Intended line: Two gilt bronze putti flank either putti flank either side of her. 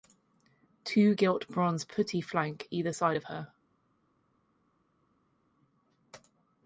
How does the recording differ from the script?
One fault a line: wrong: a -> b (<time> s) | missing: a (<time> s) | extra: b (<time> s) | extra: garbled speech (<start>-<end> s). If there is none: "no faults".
missing: putti flank either (2.9 s)